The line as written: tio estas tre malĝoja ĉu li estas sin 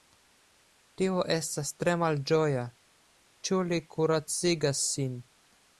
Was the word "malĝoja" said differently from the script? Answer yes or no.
no